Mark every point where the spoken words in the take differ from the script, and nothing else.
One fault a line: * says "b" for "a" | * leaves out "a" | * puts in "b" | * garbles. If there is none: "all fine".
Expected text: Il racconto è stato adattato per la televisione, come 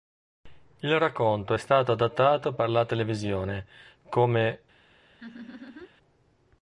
all fine